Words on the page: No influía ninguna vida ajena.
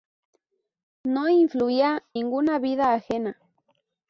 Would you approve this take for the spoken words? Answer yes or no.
yes